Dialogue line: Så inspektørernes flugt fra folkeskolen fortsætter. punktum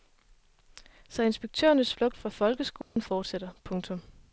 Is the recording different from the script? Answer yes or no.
no